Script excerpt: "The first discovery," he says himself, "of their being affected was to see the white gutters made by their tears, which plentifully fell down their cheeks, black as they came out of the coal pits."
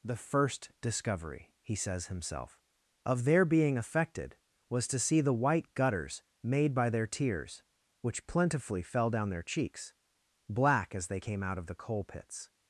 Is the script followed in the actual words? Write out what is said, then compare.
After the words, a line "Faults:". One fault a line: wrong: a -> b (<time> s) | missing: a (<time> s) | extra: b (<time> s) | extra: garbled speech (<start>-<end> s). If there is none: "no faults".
"The first discovery," he says himself, "of their being affected was to see the white gutters made by their tears, which plentifully fell down their cheeks, black as they came out of the coal pits."
Faults:
no faults